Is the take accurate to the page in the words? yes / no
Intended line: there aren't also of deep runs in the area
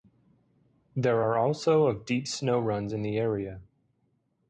no